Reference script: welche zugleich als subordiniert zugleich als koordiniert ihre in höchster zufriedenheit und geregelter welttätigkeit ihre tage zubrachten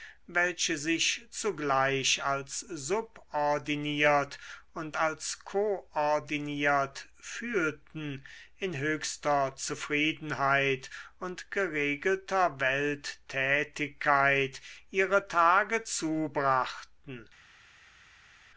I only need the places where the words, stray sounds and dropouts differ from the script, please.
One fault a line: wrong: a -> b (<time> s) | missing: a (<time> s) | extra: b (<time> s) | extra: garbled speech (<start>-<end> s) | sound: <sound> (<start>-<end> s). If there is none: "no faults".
extra: sich (0.8 s)
wrong: zugleich -> und (4.7 s)
wrong: ihre -> fühlten (7.2 s)